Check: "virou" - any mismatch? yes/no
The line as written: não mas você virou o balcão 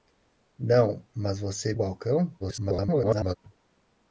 yes